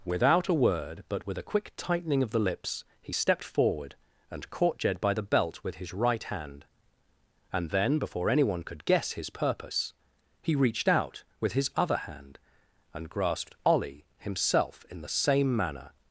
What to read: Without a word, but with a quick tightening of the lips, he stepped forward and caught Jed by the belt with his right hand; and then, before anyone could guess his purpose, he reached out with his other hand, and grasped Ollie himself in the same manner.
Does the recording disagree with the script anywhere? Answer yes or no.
no